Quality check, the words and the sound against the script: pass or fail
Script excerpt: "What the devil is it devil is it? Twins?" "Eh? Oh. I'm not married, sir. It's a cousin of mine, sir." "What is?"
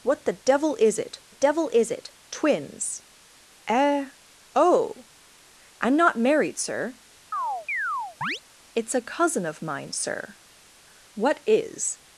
fail